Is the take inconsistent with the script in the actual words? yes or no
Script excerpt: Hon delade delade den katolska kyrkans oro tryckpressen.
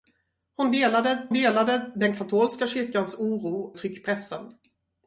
no